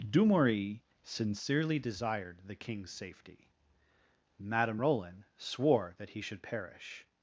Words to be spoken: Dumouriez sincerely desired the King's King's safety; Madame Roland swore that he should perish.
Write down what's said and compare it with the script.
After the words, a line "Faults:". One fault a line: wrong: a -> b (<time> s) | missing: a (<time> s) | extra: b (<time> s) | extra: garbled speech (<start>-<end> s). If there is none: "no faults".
Dumouriez sincerely desired the King's safety; Madame Roland swore that he should perish.
Faults:
missing: King's (2.9 s)